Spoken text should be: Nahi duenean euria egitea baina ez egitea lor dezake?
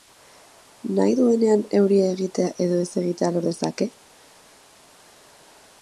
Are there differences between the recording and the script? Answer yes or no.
yes